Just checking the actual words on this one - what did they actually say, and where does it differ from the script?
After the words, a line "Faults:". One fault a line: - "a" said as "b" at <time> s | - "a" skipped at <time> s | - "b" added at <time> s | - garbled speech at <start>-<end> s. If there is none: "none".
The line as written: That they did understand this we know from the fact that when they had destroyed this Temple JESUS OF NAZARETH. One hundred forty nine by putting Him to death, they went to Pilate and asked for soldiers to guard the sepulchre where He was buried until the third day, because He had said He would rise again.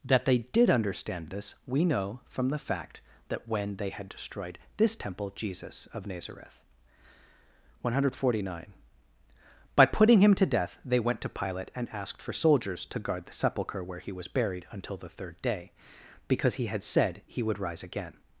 That they did understand this we know from the fact that when they had destroyed this Temple JESUS OF NAZARETH. One hundred forty nine by putting Him to death, they went to Pilate and asked for soldiers to guard the sepulchre where He was buried until the third day, because He had said He would rise again.
Faults:
none